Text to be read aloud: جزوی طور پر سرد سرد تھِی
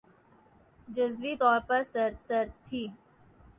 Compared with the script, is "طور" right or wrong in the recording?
right